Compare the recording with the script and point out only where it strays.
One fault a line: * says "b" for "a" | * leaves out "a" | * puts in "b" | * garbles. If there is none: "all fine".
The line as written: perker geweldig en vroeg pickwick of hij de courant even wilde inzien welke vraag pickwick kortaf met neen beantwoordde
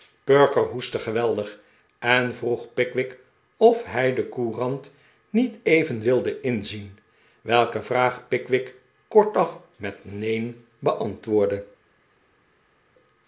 * puts in "hoestte"
* puts in "niet"